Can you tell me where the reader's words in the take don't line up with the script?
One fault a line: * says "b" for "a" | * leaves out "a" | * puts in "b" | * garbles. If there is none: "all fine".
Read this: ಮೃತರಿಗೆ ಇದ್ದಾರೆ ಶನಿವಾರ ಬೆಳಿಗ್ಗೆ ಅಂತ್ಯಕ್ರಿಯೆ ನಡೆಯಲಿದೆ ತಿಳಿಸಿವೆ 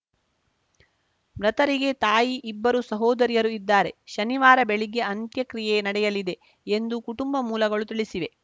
* puts in "ತಾಯಿ ಇಬ್ಬರು ಸಹೋದರಿಯರು"
* puts in "ಎಂದು ಕುಟುಂಬ ಮೂಲಗಳು"